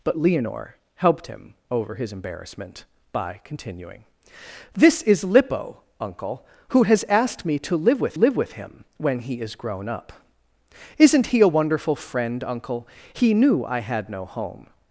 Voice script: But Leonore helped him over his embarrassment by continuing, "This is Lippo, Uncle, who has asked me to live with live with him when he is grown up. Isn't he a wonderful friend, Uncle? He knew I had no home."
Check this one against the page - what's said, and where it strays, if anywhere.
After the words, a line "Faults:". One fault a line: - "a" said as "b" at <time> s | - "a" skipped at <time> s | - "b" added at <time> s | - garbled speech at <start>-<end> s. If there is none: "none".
But Leonore helped him over his embarrassment by continuing, "This is Lippo, Uncle, who has asked me to live with live with him when he is grown up. Isn't he a wonderful friend, Uncle? He knew I had no home."
Faults:
none